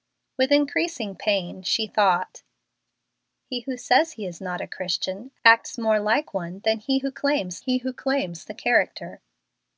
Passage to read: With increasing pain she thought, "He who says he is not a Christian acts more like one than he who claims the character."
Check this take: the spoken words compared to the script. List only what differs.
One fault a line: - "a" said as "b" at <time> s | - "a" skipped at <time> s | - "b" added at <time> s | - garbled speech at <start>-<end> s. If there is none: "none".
- "he who claims" added at 7.6 s